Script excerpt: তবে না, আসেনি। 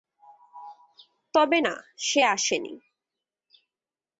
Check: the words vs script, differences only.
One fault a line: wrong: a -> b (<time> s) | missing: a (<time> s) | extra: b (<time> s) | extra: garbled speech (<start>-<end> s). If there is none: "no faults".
extra: সে (2.0 s)